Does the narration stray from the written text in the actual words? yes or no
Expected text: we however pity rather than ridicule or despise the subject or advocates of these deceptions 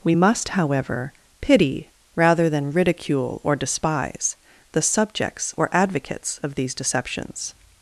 yes